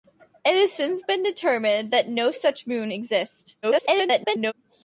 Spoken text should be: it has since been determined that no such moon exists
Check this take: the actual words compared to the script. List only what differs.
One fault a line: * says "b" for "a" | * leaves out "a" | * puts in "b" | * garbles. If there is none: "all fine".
* garbles